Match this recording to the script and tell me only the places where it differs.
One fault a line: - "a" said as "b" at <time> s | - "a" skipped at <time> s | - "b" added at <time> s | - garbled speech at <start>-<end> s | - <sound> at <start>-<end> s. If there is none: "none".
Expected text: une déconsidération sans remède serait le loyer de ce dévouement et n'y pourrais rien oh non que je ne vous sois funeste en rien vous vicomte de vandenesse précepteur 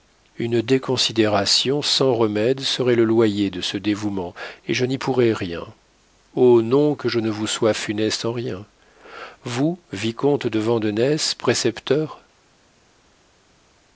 - "je" added at 4.7 s